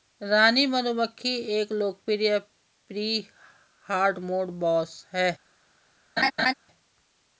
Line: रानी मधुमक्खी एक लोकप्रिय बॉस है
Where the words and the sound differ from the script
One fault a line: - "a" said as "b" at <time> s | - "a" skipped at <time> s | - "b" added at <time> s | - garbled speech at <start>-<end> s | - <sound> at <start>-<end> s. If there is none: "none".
- "प्री हार्डमोड" added at 2.9 s
- laugh at 6.2-6.5 s